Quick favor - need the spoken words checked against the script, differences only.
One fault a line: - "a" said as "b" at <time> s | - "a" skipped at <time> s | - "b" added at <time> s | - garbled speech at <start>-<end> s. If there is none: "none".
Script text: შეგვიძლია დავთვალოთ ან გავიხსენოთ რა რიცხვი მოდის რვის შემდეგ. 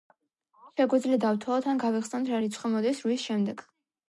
none